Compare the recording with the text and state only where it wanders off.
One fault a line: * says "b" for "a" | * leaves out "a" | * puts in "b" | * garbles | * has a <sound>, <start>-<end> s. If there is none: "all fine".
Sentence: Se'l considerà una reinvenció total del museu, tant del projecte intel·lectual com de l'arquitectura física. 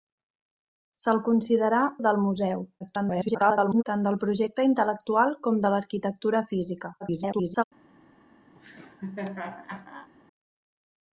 * leaves out "una reinvenció total"
* garbles
* garbles
* has a laugh, 8.5-10.1 s